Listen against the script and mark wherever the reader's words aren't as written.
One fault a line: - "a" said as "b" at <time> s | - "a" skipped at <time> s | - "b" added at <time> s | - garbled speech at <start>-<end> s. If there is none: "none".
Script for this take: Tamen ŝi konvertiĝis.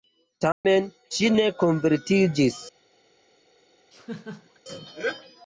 - "ne" added at 1.4 s